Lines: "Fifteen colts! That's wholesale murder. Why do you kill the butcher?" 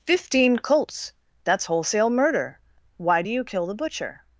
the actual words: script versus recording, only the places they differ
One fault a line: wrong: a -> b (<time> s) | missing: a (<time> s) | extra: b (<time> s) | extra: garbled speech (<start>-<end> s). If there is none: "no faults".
no faults